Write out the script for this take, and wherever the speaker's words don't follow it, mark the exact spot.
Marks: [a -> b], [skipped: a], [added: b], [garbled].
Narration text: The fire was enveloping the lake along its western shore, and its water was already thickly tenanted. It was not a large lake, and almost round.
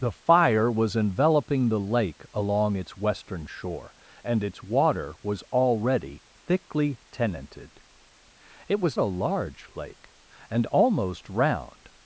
The fire was enveloping the lake along its western shore, and its water was already thickly tenanted. It was [skipped: not] a large lake, and almost round.